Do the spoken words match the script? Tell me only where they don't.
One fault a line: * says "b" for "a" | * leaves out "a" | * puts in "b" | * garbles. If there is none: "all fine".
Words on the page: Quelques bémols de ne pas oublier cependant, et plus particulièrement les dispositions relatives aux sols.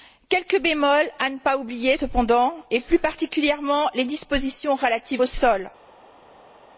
* says "à" for "de"